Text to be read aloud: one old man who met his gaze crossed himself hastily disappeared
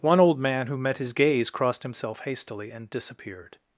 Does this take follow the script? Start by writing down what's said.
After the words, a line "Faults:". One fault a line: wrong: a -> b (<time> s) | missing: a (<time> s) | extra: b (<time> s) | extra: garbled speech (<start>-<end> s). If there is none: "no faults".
one old man who met his gaze crossed himself hastily and disappeared
Faults:
extra: and (2.7 s)